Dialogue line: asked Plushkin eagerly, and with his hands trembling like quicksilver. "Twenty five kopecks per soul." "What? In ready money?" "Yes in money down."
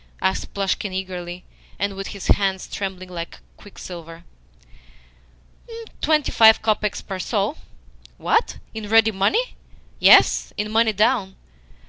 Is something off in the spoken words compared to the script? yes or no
no